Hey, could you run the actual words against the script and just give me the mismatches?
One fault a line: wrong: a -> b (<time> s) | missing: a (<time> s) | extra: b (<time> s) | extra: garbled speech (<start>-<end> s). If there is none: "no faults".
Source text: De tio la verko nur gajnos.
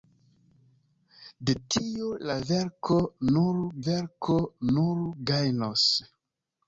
extra: verko nur (3.9 s)